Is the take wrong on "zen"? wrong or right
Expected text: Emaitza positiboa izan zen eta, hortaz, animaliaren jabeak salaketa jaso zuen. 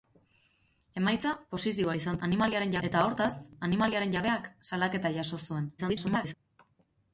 wrong